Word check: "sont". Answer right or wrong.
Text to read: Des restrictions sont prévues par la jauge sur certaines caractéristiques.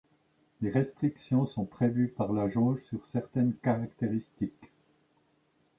right